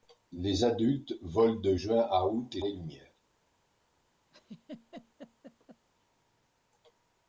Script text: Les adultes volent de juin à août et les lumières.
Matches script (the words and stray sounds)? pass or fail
fail